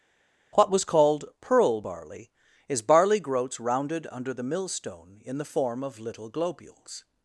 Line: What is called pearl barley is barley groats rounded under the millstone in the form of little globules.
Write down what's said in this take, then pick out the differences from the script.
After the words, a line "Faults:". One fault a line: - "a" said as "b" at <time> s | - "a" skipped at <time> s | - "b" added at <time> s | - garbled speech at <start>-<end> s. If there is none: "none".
What was called pearl barley is barley groats rounded under the millstone in the form of little globules.
Faults:
- "is" said as "was" at 0.7 s